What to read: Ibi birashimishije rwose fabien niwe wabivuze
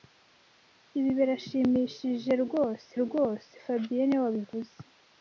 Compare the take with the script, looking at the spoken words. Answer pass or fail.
fail